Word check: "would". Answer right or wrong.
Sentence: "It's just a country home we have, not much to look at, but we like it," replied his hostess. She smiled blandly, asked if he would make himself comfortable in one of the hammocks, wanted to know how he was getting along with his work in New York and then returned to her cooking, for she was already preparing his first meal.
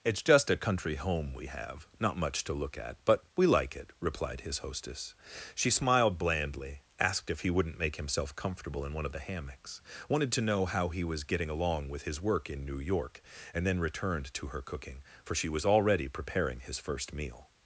wrong